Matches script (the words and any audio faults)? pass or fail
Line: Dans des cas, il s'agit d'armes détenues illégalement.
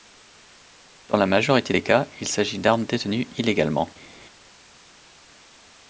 fail